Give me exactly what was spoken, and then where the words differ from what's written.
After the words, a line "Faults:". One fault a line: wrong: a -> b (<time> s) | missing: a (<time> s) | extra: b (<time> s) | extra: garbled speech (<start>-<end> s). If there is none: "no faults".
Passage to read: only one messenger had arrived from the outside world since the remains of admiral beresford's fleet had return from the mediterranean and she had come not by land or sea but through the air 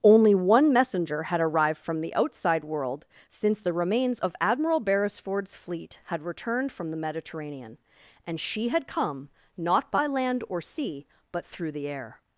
only one messenger had arrived from the outside world since the remains of admiral beresford's fleet had returned from the mediterranean and she had come not by land or sea but through the air
Faults:
wrong: return -> returned (6.2 s)